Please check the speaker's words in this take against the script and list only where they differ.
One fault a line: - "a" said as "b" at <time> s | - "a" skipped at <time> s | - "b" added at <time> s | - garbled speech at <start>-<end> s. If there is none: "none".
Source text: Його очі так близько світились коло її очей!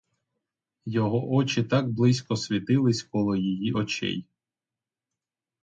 none